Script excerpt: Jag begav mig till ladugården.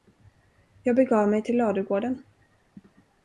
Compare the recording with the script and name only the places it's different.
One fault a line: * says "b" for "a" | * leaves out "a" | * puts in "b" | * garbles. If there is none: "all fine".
all fine